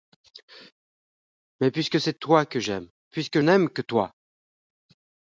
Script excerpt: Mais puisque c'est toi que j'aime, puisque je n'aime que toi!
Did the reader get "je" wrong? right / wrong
wrong